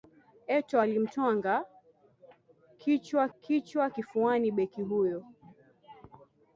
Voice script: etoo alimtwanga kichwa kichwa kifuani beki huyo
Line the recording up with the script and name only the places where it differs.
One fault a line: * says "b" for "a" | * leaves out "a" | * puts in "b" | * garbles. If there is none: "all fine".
all fine